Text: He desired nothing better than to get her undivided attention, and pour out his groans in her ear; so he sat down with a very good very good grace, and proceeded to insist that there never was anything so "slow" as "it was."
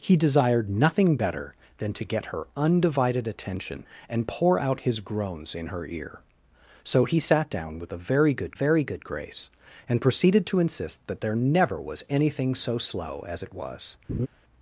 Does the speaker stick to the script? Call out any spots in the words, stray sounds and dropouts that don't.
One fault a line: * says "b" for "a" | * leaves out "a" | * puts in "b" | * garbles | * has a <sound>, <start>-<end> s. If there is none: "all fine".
* has a laugh, 14.1-14.3 s